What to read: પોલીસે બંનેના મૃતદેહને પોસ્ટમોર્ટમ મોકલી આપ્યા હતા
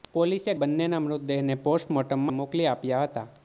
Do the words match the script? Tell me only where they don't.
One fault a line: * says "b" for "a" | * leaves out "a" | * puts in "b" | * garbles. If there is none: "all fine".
all fine